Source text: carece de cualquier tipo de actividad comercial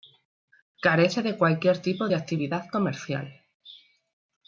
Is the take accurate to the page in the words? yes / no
yes